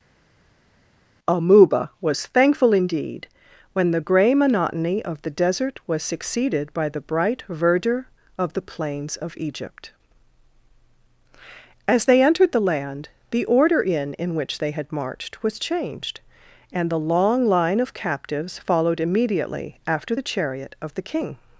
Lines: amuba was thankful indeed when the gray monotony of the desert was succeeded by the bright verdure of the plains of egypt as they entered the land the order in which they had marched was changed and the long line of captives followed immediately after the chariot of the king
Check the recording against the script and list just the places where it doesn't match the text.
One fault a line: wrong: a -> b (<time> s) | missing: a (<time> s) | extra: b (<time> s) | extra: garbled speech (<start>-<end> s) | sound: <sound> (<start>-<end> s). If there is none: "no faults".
extra: in (14.1 s)